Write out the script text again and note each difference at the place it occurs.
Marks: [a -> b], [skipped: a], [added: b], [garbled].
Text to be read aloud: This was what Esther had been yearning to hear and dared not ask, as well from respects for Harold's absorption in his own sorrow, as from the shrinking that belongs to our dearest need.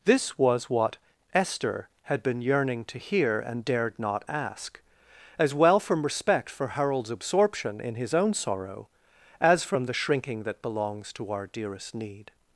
This was what Esther had been yearning to hear and dared not ask, as well from [respects -> respect] for Harold's absorption in his own sorrow, as from the shrinking that belongs to our dearest need.